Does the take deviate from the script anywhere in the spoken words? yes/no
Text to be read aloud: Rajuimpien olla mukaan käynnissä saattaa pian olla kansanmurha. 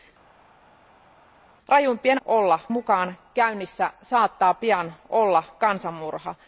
no